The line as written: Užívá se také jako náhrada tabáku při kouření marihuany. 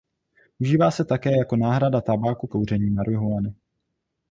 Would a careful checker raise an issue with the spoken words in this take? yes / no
yes